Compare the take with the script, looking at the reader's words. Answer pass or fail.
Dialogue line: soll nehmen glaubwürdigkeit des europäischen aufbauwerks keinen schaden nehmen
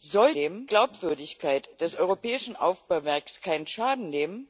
pass